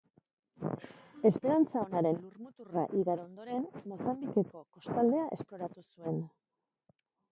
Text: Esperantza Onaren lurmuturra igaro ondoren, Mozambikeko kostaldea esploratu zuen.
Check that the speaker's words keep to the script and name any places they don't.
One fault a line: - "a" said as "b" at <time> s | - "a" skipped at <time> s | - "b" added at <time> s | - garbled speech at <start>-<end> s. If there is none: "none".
none